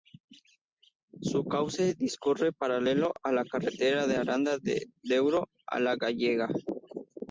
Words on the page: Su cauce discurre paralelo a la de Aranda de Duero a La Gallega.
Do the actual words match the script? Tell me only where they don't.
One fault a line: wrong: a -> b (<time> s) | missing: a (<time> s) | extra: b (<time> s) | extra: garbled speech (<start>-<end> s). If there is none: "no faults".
extra: carretera (3.5 s)